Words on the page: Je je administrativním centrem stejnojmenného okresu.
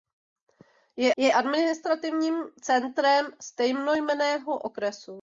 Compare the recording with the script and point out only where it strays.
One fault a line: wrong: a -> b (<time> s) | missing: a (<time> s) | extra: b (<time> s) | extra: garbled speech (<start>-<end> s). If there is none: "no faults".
no faults